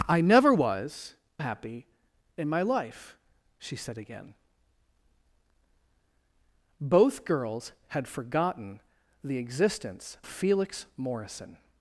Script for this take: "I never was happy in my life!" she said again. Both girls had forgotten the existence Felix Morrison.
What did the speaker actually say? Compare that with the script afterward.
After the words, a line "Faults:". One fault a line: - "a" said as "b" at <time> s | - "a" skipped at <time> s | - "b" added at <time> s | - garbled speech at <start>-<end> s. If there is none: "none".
"I never was happy in my life!" she said again. Both girls had forgotten the existence Felix Morrison.
Faults:
none